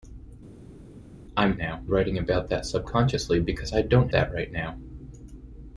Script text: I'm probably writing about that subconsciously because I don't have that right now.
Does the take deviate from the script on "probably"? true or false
true